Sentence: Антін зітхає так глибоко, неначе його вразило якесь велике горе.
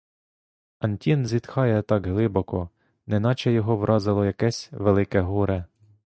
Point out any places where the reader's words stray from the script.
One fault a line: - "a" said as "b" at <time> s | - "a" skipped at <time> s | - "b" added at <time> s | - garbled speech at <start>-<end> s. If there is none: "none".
none